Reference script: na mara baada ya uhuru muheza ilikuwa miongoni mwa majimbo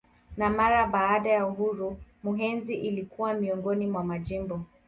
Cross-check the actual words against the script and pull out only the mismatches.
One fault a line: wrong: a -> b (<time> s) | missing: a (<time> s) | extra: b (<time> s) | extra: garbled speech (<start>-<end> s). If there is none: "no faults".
no faults